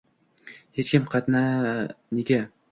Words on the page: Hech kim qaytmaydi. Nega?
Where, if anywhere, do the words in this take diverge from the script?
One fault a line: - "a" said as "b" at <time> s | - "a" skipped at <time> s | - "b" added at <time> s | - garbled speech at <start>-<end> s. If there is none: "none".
- "qaytmaydi" skipped at 1.1 s